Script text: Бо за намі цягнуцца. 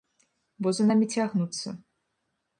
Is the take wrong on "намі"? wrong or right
right